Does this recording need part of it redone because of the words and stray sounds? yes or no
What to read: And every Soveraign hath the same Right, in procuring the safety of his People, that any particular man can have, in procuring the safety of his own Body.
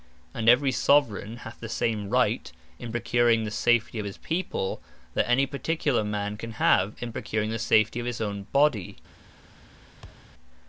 yes